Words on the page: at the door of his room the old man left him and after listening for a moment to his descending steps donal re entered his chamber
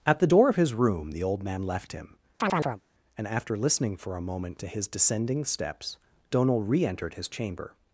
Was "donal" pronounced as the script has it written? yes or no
yes